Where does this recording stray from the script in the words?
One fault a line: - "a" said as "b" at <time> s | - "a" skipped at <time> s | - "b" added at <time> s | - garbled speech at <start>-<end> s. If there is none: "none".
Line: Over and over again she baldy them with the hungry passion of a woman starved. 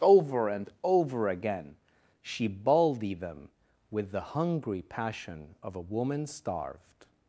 none